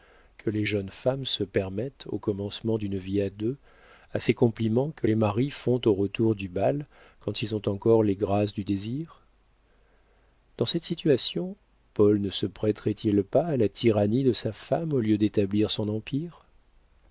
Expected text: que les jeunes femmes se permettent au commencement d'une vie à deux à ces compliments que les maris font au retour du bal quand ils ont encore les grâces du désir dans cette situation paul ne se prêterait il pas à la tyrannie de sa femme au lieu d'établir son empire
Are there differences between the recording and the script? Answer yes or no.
no